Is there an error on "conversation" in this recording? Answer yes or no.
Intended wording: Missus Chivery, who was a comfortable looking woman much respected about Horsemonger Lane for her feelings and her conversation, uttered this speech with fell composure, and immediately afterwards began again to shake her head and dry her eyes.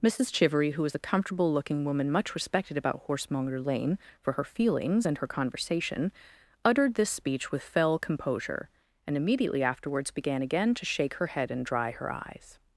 no